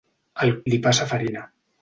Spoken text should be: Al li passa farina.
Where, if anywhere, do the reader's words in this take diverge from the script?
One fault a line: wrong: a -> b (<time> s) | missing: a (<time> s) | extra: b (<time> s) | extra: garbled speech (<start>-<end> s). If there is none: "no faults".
no faults